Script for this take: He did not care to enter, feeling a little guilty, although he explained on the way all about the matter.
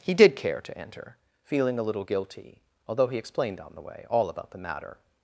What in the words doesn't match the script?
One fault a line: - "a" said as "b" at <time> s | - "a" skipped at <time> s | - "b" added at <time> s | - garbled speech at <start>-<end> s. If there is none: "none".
- "not" skipped at 0.3 s